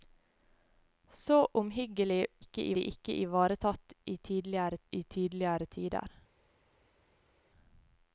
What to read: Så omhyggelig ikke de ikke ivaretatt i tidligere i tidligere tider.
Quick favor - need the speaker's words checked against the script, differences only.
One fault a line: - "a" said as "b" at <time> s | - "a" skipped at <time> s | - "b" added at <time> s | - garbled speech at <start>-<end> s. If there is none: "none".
none